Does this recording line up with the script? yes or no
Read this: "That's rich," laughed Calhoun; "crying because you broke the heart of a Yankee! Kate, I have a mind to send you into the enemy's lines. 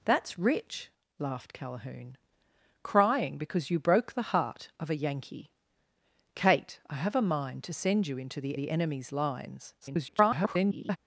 no